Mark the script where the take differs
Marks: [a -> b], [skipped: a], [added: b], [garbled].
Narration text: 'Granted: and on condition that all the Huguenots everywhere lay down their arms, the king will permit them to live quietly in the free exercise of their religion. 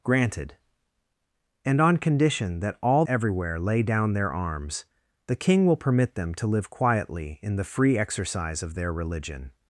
'Granted: and on condition that all [skipped: the Huguenots] everywhere lay down their arms, the king will permit them to live quietly in the free exercise of their religion.